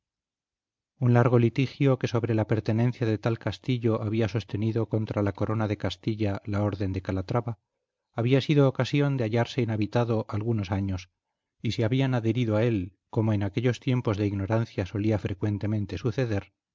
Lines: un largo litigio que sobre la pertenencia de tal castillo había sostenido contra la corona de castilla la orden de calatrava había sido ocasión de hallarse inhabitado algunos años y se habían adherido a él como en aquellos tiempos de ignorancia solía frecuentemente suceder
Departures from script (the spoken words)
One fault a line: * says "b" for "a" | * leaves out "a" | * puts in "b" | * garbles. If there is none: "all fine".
all fine